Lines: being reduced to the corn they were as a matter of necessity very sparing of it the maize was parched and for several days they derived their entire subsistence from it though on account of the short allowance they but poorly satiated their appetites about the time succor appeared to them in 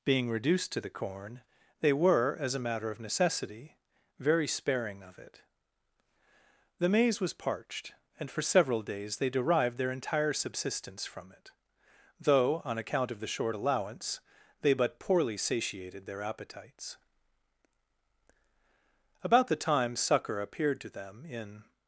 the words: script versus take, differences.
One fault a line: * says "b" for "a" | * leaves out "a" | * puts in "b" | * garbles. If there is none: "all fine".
all fine